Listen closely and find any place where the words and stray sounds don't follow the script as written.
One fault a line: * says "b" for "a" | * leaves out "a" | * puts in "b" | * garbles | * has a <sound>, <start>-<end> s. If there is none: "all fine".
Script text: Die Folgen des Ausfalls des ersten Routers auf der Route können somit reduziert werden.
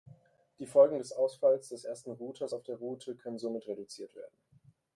all fine